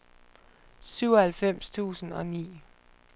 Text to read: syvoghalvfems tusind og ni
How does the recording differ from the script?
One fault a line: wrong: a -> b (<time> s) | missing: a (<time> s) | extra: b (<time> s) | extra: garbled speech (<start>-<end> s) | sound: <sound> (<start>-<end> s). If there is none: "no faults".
no faults